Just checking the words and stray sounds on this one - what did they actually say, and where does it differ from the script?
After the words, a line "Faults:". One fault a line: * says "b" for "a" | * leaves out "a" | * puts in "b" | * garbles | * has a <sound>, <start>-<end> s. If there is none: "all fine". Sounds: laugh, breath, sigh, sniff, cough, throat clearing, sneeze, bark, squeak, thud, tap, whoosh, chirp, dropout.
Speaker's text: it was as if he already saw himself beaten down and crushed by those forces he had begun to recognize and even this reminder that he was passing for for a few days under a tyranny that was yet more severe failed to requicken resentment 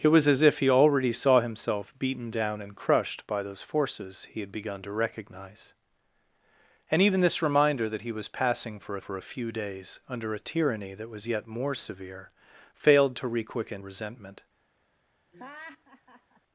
it was as if he already saw himself beaten down and crushed by those forces he had begun to recognize and even this reminder that he was passing for for a few days under a tyranny that was yet more severe failed to requicken resentment
Faults:
* has a laugh, 15.3-16.4 s